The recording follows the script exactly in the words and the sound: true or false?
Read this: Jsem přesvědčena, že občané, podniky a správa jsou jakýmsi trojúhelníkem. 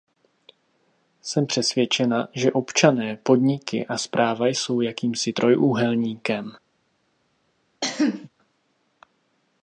false